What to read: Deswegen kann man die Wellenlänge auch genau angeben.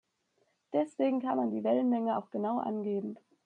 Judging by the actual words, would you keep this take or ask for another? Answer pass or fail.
pass